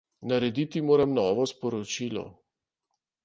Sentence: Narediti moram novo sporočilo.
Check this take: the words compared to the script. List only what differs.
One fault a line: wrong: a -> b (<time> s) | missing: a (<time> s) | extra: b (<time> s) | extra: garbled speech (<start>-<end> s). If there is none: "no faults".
no faults